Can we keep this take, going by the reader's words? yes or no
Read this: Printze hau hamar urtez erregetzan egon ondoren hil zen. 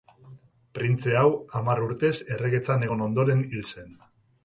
yes